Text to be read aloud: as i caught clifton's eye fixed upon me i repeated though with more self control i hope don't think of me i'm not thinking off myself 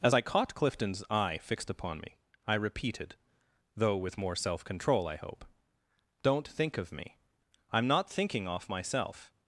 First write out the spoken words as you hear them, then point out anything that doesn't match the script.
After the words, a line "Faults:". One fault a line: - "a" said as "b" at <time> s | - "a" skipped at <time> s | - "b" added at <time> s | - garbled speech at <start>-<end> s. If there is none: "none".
as i caught clifton's eye fixed upon me i repeated though with more self control i hope don't think of me i'm not thinking off myself
Faults:
none